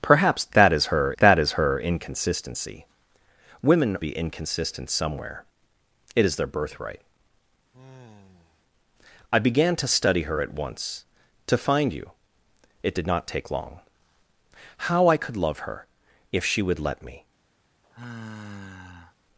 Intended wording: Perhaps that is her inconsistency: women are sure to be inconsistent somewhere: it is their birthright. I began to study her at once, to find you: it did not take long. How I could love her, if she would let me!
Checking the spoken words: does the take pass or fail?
fail